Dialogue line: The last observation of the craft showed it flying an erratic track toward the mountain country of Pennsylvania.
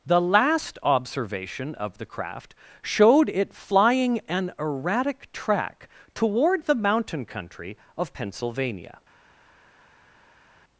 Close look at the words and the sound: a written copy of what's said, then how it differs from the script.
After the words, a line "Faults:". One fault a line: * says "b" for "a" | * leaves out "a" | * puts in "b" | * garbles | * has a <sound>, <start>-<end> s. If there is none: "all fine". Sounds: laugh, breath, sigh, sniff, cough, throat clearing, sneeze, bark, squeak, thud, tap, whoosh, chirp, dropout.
The last observation of the craft showed it flying an erratic track toward the mountain country of Pennsylvania.
Faults:
all fine